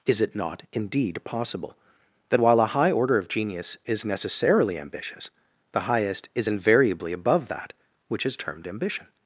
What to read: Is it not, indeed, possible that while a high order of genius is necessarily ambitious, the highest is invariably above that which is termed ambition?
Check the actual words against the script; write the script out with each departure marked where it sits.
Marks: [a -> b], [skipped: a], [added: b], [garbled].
Is it not, indeed, possible that while a high order of genius is necessarily ambitious, the highest is invariably above that which is termed ambition?